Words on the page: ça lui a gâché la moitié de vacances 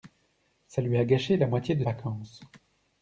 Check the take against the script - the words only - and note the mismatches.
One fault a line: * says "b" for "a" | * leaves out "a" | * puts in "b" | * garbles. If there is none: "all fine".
all fine